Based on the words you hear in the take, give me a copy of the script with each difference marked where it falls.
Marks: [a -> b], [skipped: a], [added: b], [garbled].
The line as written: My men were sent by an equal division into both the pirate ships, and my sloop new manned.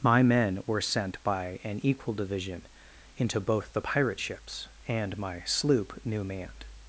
My men were sent by an equal division into both the pirate ships, and my sloop new manned.